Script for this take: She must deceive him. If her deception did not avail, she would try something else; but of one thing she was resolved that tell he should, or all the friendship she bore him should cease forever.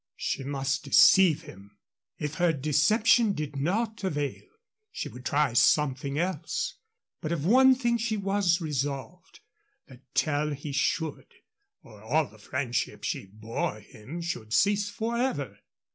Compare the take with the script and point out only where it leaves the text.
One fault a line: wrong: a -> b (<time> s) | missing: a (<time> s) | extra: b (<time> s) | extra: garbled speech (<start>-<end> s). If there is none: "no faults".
no faults